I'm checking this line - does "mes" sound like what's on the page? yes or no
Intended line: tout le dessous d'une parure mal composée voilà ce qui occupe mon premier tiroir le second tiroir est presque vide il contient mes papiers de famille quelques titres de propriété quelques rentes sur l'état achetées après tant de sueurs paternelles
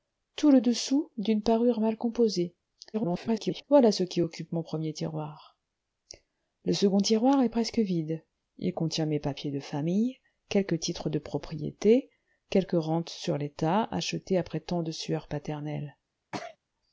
yes